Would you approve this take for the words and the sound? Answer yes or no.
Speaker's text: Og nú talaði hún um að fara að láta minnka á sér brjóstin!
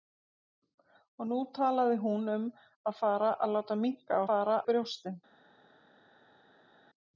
no